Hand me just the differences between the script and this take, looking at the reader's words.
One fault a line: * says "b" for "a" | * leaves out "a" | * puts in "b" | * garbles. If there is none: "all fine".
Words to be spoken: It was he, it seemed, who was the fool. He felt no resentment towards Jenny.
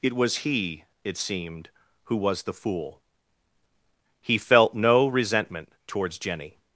all fine